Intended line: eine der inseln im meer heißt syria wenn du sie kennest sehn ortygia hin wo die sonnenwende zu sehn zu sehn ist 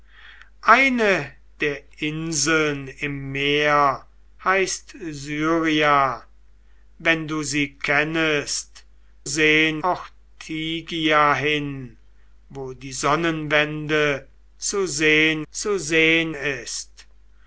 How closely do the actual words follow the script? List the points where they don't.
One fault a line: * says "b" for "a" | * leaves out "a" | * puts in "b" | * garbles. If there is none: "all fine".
all fine